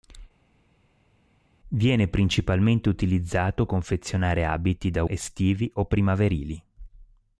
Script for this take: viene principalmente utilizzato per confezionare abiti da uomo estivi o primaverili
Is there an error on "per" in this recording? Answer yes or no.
yes